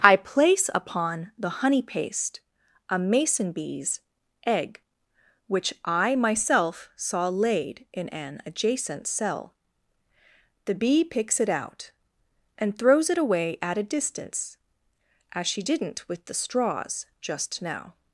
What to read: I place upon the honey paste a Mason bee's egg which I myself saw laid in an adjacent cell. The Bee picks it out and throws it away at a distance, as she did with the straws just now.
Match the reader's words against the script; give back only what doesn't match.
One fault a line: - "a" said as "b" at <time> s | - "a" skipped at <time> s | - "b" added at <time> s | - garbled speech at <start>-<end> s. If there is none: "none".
- "did" said as "didn't" at 15.6 s